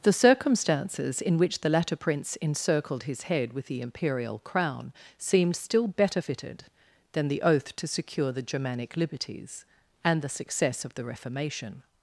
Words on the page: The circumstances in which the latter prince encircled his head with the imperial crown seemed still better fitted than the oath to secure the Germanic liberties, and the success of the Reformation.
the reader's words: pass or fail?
pass